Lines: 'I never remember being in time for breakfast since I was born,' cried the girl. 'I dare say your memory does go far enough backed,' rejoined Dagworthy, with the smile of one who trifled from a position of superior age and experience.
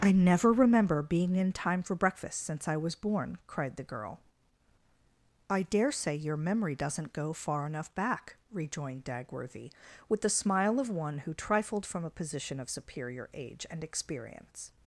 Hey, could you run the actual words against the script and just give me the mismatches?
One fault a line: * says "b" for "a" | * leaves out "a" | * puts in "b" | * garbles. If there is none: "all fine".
* says "doesn't" for "does"
* says "back" for "backed"